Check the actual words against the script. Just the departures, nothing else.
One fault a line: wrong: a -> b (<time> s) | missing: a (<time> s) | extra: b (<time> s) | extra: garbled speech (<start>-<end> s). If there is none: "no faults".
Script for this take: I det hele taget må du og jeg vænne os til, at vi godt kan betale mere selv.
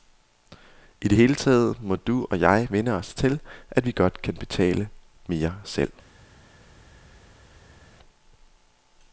no faults